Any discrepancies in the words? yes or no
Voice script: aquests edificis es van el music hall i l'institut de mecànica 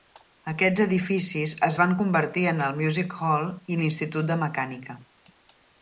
yes